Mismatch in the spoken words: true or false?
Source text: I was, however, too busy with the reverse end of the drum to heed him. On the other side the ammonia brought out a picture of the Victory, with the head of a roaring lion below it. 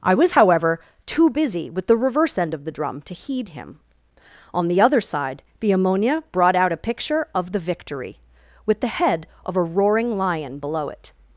false